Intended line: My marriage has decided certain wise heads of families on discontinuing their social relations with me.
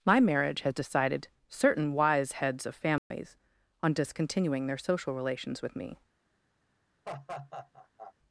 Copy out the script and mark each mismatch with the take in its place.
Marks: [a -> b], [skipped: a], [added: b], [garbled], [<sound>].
My marriage has decided certain wise heads of families [dropout] on discontinuing their social relations with me. [laugh]